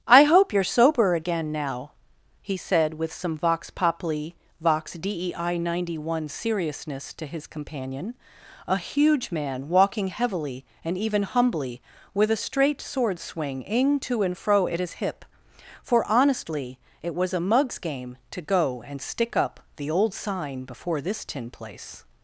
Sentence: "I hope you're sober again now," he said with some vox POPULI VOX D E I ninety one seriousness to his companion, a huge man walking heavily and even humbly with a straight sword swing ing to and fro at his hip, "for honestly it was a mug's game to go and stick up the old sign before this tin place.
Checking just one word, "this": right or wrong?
right